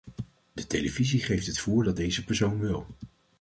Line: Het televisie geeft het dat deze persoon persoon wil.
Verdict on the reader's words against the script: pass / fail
fail